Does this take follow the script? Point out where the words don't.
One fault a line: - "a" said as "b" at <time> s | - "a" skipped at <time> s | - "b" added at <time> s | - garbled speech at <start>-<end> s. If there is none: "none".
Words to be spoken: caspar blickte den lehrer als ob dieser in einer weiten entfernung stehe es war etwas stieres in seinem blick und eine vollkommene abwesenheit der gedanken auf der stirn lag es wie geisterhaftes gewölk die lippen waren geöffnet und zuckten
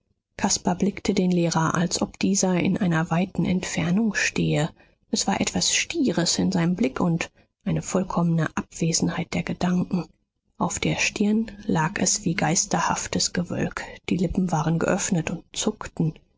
none